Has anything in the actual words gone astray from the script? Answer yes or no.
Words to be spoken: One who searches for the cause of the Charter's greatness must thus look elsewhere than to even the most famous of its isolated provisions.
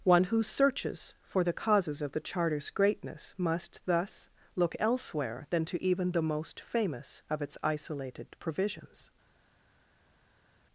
yes